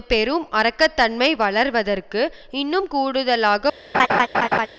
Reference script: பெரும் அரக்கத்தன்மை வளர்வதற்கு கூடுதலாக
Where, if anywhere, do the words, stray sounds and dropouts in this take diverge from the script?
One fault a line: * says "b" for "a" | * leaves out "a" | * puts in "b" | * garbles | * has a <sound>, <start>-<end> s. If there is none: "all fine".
* puts in "இன்னும்"
* has a laugh, 3.9-4.7 s